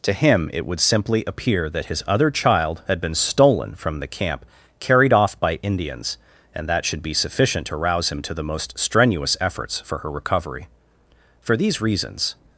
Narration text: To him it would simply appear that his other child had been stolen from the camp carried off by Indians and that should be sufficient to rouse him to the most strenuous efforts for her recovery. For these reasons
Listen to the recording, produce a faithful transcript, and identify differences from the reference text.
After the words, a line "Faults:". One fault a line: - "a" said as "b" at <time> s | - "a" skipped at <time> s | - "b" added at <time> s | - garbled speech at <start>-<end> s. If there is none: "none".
To him it would simply appear that his other child had been stolen from the camp carried off by Indians and that should be sufficient to rouse him to the most strenuous efforts for her recovery. For these reasons
Faults:
none